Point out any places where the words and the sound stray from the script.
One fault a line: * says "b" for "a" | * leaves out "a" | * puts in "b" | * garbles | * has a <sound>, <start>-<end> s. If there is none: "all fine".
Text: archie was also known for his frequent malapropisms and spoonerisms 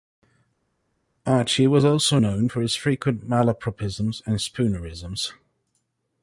all fine